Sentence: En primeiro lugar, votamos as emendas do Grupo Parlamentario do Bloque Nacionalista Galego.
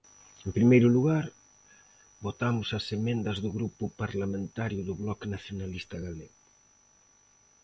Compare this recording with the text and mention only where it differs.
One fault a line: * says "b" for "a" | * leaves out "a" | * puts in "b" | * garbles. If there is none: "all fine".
all fine